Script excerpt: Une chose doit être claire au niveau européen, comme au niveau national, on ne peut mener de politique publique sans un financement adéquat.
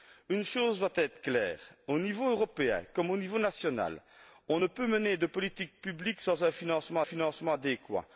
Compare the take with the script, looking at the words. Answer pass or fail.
fail